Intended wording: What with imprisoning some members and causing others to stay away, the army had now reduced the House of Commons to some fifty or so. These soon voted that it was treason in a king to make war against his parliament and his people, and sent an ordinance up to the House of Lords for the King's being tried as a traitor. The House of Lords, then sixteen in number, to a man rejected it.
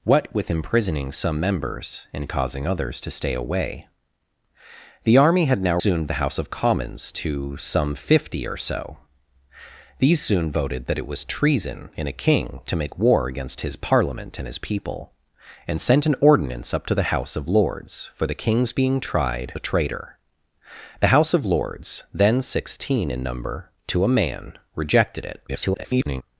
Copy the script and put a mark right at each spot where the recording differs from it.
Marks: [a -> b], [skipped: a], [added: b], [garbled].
What with imprisoning some members and causing others to stay away, the army had now [reduced -> soon] the House of Commons to some fifty or so. These soon voted that it was treason in a king to make war against his parliament and his people, and sent an ordinance up to the House of Lords for the King's being tried [skipped: as] a traitor. The House of Lords, then sixteen in number, to a man rejected it. [garbled]